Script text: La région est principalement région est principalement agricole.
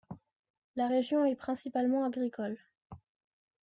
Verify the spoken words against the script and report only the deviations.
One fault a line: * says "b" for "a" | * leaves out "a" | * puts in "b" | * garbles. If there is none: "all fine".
* leaves out "région est principalement"